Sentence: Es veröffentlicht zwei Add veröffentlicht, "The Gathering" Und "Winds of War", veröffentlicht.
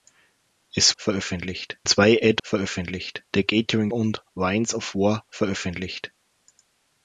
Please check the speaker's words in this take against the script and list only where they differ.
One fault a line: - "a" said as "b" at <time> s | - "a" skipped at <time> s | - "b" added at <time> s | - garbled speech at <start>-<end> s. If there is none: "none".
none